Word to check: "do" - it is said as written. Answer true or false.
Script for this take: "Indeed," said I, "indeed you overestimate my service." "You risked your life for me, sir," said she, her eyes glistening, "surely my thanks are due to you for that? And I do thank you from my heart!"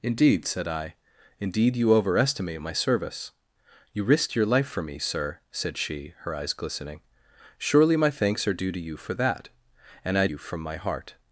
false